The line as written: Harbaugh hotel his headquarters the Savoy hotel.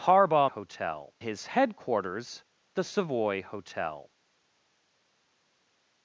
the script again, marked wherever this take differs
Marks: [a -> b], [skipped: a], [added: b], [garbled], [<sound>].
Harbaugh hotel his headquarters the Savoy hotel.